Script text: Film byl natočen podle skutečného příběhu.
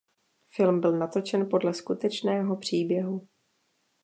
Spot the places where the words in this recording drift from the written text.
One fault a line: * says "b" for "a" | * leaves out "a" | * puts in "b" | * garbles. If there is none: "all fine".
all fine